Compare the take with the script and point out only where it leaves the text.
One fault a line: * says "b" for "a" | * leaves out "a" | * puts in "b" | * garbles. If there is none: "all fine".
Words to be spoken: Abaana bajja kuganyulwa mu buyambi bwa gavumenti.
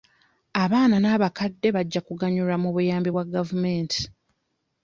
* puts in "n'abakadde"